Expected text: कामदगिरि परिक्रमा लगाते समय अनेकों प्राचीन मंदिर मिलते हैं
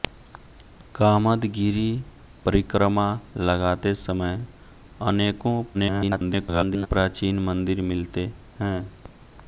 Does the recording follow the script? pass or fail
fail